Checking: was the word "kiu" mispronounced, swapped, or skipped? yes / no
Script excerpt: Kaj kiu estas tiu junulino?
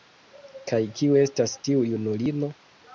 no